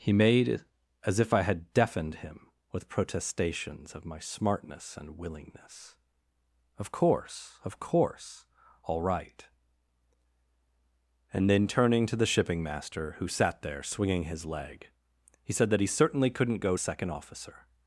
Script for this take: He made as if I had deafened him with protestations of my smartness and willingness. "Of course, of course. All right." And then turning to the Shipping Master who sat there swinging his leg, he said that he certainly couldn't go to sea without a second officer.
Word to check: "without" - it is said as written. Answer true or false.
false